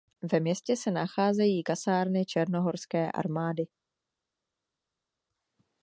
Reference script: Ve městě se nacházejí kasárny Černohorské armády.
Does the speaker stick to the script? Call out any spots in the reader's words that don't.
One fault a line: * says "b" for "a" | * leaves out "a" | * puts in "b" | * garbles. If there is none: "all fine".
all fine